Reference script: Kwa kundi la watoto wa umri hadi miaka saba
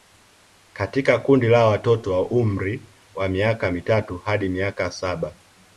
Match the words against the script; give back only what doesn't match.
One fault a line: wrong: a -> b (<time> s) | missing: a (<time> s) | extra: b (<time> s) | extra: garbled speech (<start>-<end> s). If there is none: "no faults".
wrong: Kwa -> Katika (0.7 s)
extra: wa miaka mitatu (3.1 s)